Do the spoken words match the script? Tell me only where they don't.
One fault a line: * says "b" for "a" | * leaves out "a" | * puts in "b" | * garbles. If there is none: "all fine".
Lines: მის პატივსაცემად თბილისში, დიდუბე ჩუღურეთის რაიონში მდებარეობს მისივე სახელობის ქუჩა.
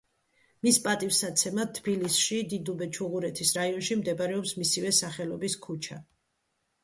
all fine